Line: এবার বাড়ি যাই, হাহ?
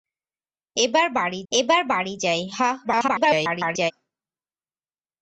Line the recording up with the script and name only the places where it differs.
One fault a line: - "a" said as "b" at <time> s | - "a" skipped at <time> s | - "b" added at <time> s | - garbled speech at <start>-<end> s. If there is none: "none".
- "এবার বাড়ি" added at 1.5 s
- garbled speech at 2.8-3.9 s